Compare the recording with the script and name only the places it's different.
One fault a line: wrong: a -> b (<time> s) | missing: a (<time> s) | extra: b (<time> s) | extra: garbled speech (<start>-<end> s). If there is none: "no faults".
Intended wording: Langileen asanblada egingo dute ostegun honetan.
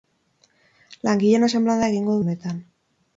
missing: dute ostegun (2.2 s)